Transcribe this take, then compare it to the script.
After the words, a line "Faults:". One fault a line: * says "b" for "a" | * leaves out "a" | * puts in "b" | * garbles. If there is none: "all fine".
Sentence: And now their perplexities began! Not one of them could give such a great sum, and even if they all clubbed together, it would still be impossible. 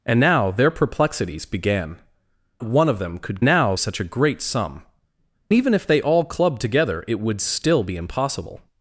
And now their perplexities began! One of them could now such a great sum, even if they all clubbed together, it would still be impossible.
Faults:
* leaves out "Not"
* says "now" for "give"
* leaves out "and"